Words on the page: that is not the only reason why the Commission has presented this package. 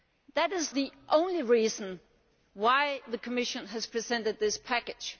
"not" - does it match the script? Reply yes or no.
no